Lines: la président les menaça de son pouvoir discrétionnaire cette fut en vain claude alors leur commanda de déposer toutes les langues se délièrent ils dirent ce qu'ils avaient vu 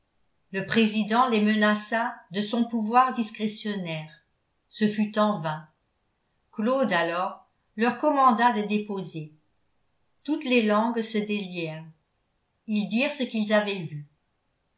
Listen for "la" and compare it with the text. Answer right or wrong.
wrong